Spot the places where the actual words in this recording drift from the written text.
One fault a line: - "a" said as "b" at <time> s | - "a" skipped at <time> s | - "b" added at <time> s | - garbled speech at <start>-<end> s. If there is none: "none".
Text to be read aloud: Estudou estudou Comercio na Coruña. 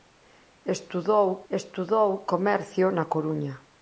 none